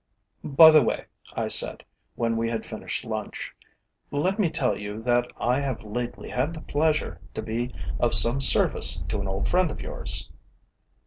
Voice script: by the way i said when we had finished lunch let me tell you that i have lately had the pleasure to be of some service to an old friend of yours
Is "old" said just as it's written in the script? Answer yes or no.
yes